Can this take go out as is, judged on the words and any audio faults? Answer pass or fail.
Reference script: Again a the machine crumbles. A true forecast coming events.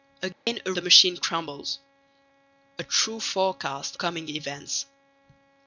fail